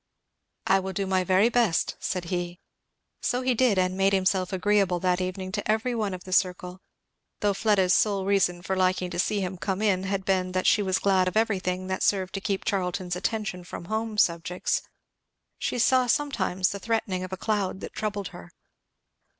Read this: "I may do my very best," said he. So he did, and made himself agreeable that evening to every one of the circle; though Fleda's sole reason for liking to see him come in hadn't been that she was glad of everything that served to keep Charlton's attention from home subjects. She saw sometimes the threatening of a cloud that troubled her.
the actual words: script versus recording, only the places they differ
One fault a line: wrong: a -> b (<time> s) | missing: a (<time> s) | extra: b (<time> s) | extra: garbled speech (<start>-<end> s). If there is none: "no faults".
wrong: may -> will (0.8 s)
wrong: hadn't -> had (10.1 s)